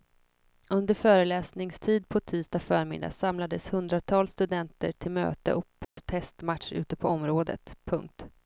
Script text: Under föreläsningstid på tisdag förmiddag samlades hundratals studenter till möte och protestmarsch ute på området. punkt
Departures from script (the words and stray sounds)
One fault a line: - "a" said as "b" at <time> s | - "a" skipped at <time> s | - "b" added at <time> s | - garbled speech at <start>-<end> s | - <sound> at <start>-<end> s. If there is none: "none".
- dropout at 5.8-6.0 s